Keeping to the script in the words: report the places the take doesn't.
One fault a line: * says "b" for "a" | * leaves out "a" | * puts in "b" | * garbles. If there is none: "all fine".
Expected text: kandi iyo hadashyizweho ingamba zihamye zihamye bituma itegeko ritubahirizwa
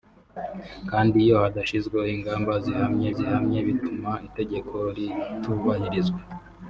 all fine